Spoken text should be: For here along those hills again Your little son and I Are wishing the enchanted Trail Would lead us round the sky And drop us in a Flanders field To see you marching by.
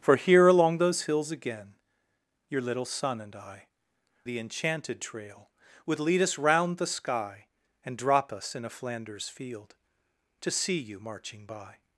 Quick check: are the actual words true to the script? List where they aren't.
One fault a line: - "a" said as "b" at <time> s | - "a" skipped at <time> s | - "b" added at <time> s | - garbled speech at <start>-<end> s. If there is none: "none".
- "Are wishing" skipped at 3.7 s